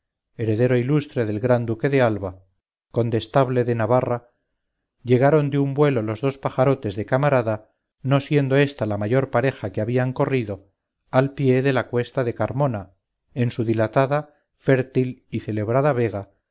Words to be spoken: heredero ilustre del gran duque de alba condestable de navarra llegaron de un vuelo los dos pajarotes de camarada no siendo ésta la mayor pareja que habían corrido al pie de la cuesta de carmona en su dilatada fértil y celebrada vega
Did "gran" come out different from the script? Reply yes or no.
no